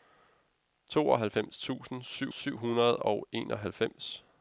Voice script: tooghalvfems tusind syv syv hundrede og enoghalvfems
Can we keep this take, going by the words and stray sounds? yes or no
yes